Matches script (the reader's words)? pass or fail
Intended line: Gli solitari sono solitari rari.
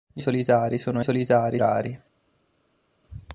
pass